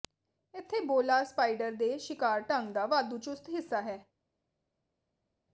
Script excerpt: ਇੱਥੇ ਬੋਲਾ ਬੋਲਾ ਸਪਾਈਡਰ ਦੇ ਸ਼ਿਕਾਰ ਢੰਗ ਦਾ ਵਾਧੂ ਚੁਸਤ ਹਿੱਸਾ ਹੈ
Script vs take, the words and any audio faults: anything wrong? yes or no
yes